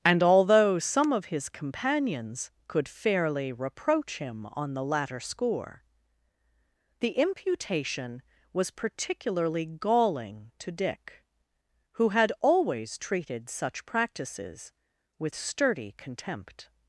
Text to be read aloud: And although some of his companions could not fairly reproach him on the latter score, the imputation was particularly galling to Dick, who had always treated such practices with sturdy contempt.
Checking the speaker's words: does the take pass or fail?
fail